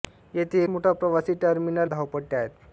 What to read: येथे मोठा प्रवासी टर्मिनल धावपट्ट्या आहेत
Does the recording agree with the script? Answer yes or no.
yes